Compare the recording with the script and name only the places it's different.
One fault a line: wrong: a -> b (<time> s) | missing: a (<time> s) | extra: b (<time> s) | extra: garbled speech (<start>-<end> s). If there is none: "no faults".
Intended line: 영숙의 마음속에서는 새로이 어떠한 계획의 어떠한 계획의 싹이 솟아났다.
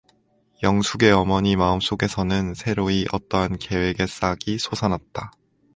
extra: 어머니 (1.1 s)
missing: 어떠한 계획의 (4.1 s)